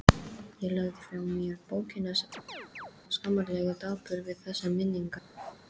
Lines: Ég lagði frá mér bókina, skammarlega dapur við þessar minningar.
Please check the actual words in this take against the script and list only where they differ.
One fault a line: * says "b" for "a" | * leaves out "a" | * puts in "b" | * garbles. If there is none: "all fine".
all fine